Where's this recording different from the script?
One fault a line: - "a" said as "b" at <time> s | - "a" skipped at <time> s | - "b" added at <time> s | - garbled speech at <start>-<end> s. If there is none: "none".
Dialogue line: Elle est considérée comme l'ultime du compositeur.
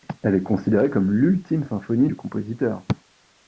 - "symphonie" added at 1.6 s